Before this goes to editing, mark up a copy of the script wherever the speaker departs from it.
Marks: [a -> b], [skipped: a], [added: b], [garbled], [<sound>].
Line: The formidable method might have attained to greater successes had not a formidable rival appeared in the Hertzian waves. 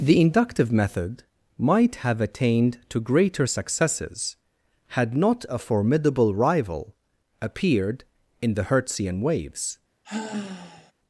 The [formidable -> inductive] method might have attained to greater successes had not a formidable rival appeared in the Hertzian waves. [sigh]